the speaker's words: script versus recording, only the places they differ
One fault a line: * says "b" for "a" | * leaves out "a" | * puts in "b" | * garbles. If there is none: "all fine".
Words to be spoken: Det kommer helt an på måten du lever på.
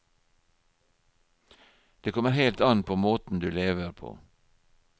all fine